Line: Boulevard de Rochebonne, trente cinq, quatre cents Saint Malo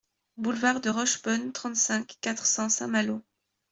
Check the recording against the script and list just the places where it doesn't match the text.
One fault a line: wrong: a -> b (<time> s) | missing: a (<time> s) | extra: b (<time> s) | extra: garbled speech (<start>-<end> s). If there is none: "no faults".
no faults